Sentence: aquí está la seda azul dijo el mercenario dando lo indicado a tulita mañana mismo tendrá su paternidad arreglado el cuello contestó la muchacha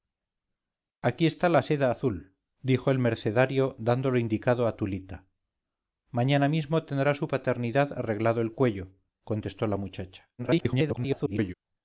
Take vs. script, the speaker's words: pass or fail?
fail